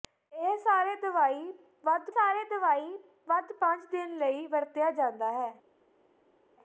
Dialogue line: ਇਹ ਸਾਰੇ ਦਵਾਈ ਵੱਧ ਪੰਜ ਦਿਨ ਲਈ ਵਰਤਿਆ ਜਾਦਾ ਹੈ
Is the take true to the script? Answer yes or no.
no